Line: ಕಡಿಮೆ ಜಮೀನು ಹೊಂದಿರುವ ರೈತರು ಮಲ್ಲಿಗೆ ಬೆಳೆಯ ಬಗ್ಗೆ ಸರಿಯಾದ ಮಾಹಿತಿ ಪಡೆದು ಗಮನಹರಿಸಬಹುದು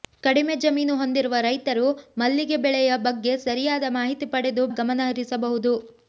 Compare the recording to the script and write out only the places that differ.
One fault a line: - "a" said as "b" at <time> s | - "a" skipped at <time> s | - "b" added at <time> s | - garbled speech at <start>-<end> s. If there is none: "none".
none